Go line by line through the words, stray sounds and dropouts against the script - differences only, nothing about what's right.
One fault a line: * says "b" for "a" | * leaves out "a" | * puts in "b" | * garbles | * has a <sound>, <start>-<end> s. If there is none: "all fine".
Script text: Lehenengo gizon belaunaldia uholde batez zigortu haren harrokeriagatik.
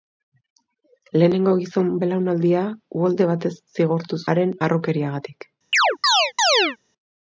* has a chirp, 5.7-6.8 s